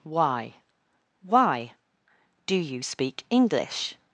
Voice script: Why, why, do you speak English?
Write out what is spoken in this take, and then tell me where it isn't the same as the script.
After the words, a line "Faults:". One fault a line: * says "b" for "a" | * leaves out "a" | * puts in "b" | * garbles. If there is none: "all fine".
Why, why, do you speak English?
Faults:
all fine